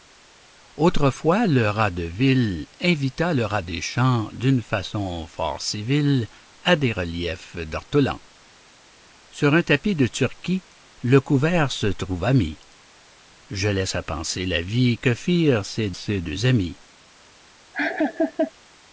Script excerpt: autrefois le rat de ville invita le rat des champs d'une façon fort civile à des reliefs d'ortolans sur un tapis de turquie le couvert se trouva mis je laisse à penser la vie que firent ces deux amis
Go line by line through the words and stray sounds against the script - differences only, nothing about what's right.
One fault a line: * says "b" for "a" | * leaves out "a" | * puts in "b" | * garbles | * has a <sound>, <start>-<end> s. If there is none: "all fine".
* puts in "ces"
* has a laugh, 17.7-18.5 s